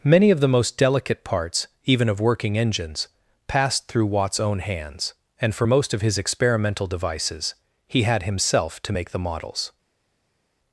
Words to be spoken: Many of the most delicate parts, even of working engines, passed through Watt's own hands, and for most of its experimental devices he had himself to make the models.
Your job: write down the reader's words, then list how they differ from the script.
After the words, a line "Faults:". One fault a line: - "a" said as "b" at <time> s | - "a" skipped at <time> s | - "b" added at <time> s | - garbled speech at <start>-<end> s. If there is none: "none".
Many of the most delicate parts, even of working engines, passed through Watt's own hands, and for most of his experimental devices he had himself to make the models.
Faults:
- "its" said as "his" at 6.0 s